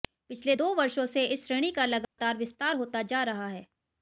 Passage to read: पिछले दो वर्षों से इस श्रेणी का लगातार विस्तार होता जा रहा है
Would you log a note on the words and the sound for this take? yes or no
yes